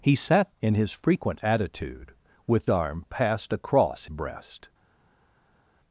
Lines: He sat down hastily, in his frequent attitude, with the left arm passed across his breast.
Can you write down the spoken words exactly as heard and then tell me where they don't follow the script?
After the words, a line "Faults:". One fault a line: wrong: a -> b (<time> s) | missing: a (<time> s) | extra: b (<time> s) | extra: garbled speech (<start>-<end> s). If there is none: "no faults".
He sat in his frequent attitude, with arm passed across breast.
Faults:
missing: down hastily (0.6 s)
missing: the left (2.7 s)
missing: his (4.1 s)